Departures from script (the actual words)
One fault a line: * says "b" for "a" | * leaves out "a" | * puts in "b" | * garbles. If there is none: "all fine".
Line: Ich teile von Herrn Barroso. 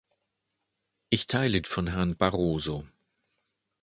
all fine